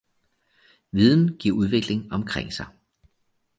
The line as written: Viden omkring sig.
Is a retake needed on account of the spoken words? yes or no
yes